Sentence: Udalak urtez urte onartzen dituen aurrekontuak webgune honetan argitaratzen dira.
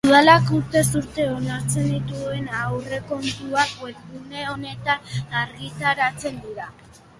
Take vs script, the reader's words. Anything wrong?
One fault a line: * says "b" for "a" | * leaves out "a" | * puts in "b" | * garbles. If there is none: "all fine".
all fine